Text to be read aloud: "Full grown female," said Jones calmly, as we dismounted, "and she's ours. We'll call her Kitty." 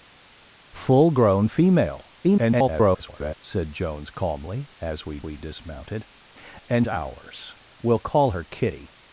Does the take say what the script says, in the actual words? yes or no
no